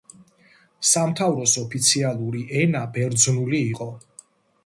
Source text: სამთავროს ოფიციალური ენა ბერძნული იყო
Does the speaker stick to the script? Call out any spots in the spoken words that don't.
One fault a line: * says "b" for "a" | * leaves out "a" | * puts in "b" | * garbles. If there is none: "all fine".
all fine